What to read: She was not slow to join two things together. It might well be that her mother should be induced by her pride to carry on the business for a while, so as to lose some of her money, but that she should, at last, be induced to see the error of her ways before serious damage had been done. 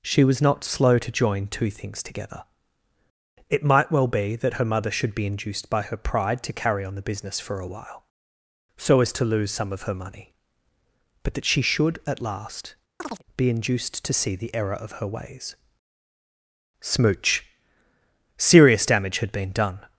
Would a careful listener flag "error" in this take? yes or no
no